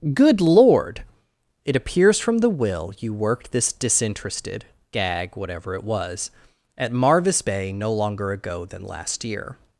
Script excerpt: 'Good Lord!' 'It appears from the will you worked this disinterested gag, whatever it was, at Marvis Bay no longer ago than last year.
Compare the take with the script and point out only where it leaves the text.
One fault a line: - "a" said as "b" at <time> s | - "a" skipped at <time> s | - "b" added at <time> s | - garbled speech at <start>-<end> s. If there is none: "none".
none